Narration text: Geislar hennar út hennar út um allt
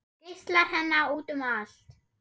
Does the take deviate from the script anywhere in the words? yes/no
yes